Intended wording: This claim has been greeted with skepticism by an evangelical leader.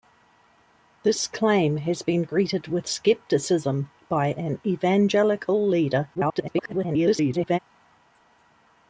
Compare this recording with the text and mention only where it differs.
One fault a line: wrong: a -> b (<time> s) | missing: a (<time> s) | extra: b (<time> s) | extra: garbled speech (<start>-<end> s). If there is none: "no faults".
extra: garbled speech (6.1-7.6 s)